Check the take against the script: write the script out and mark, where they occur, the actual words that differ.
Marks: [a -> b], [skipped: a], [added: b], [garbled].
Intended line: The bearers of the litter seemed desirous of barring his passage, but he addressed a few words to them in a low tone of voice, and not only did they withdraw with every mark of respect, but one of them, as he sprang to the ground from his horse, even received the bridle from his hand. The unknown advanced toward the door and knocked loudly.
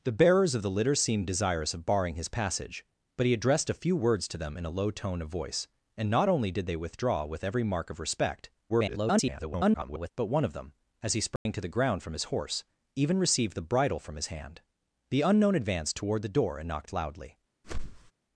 The bearers of the litter seemed desirous of barring his passage, but he addressed a few words to them in a low tone of voice, and not only did they withdraw with every mark of respect, [garbled] but one of them, as he sprang to the ground from his horse, even received the bridle from his hand. The unknown advanced toward the door and knocked loudly.